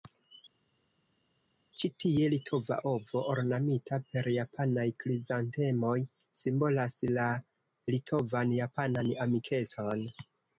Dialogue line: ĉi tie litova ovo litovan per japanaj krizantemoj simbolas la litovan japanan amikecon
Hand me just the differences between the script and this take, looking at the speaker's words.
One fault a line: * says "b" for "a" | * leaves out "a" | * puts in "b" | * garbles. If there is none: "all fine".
* says "ornamita" for "litovan"